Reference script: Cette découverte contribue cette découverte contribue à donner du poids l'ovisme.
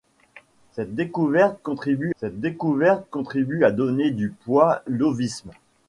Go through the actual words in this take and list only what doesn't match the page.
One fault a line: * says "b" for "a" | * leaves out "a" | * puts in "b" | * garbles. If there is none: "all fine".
all fine